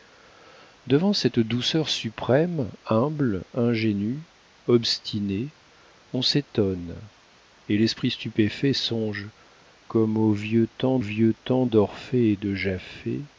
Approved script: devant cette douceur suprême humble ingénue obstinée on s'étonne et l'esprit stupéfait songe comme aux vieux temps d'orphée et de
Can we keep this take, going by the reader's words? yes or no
no